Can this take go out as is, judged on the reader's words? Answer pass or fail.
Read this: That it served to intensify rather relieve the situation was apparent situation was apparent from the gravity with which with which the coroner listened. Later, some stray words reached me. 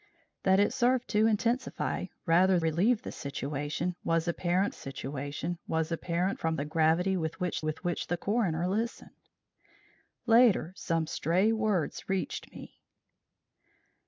pass